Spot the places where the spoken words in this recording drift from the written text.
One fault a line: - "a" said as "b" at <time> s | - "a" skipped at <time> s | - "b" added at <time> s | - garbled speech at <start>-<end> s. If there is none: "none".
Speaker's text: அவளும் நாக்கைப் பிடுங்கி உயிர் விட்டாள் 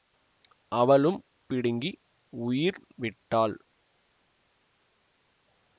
- "நாக்கைப்" skipped at 1.2 s